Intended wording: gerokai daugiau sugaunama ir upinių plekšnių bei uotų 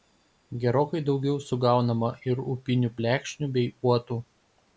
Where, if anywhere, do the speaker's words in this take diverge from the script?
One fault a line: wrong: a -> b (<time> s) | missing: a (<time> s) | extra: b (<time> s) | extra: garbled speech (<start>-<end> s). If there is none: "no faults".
no faults